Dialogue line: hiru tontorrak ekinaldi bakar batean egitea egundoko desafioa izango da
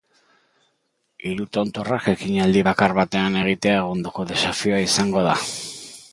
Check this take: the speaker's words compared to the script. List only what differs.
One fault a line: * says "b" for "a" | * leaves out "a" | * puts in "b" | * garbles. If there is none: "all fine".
all fine